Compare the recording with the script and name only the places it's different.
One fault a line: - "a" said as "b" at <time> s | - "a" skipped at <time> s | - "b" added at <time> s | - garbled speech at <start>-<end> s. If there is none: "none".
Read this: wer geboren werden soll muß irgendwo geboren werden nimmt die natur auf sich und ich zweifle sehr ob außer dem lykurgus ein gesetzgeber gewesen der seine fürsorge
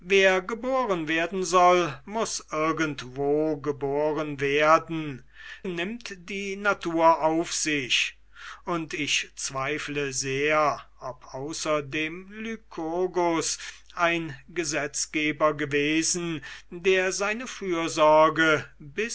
none